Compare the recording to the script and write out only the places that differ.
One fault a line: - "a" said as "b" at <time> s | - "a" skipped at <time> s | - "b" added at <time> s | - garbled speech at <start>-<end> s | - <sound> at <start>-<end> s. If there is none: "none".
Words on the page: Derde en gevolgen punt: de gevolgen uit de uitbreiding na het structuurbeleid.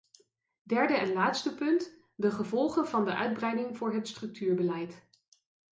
- "gevolgen" said as "laatste" at 1.1 s
- "uit" said as "van" at 2.9 s
- "na" said as "voor" at 3.7 s